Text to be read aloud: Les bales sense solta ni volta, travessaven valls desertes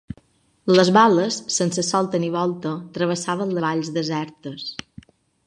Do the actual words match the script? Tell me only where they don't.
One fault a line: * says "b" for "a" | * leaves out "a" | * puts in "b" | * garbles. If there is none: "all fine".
all fine